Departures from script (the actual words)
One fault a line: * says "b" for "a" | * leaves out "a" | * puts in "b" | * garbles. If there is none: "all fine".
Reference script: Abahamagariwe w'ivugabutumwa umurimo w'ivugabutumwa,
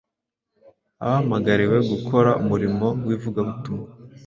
* says "gukora" for "w'ivugabutumwa"